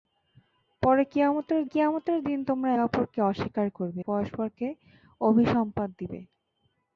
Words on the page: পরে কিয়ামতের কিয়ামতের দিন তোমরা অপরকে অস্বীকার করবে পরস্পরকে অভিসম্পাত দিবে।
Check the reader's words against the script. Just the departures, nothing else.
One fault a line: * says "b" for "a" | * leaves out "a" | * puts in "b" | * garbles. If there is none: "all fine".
all fine